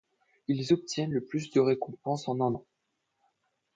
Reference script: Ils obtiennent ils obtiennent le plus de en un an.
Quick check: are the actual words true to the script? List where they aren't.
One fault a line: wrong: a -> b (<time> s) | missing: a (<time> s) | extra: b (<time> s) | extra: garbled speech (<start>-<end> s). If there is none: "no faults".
missing: ils obtiennent (1.1 s)
extra: récompenses (1.6 s)